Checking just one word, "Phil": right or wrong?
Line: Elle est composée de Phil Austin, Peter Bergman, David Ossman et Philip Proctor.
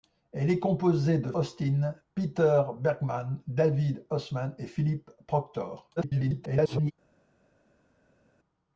wrong